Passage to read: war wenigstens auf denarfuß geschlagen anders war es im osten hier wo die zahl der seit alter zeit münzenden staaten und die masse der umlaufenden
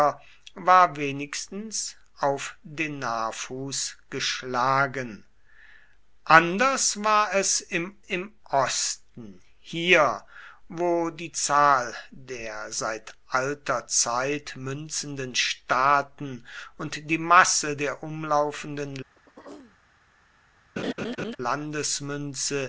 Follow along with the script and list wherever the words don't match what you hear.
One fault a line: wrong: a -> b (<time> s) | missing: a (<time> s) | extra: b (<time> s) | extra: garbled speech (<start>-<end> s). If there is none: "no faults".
extra: im (8.0 s)